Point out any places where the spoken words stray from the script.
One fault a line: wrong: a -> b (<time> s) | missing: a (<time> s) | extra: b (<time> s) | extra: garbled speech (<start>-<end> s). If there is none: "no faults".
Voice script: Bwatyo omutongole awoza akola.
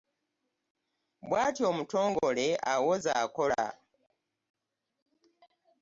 no faults